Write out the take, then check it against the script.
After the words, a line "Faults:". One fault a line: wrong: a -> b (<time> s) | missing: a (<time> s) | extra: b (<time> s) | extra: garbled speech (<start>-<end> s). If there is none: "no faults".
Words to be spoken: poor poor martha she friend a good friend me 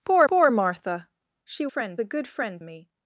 poor poor martha she friend a good friend me
Faults:
no faults